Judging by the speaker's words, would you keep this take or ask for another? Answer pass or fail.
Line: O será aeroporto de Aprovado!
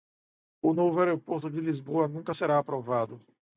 fail